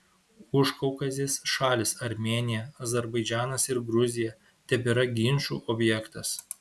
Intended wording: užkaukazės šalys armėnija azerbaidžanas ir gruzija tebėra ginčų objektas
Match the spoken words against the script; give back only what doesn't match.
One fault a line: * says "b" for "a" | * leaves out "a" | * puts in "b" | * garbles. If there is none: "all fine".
all fine